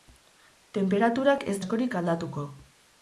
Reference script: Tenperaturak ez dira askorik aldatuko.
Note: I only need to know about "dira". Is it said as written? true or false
false